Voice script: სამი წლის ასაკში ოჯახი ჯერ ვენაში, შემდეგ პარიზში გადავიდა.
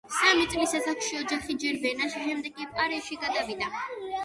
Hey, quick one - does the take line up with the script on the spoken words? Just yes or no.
no